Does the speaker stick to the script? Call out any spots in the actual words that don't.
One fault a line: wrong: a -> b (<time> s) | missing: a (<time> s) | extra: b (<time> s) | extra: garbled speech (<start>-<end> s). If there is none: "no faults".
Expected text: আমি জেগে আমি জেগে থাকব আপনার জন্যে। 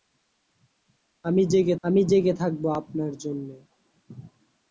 no faults